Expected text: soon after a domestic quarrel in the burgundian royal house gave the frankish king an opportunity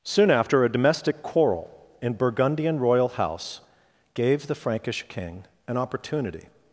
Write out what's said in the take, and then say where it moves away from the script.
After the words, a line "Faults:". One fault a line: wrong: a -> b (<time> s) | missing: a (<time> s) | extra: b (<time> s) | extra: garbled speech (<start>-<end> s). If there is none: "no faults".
soon after a domestic quarrel in burgundian royal house gave the frankish king an opportunity
Faults:
missing: the (2.1 s)